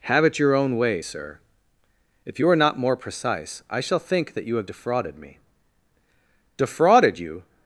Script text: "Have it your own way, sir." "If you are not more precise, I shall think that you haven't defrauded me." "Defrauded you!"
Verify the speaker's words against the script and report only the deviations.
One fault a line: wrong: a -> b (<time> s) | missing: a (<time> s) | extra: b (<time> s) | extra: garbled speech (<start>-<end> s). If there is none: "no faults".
wrong: haven't -> have (4.5 s)